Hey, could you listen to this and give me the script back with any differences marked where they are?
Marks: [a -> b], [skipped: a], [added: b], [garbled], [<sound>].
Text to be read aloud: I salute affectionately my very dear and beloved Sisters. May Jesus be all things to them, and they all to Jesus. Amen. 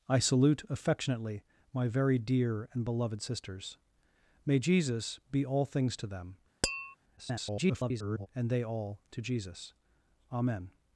I salute affectionately my very dear and beloved Sisters. May Jesus be all things to them, [tap] [garbled] and they all to Jesus. Amen.